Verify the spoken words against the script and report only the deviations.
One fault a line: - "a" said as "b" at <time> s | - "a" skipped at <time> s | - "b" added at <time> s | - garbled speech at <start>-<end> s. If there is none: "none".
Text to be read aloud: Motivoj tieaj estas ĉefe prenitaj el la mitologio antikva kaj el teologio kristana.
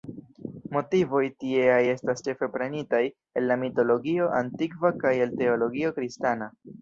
none